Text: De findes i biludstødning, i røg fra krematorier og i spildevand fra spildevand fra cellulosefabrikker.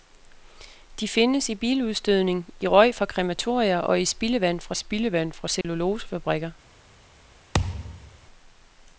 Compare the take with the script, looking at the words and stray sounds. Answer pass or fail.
fail